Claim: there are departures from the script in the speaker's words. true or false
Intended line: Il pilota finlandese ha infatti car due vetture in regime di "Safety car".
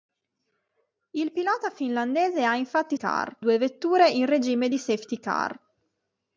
false